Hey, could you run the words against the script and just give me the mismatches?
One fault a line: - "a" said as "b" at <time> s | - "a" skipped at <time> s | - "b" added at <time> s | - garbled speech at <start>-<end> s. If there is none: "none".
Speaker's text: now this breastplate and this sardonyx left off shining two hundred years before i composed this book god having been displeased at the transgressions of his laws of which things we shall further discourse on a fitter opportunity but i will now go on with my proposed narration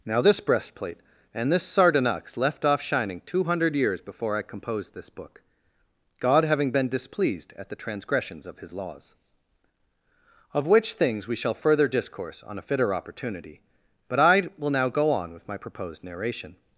none